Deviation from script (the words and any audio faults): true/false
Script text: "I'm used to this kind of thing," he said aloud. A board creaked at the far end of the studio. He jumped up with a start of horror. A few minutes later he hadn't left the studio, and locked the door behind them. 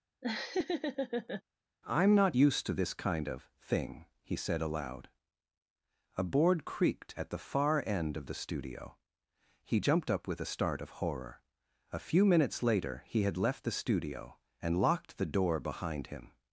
true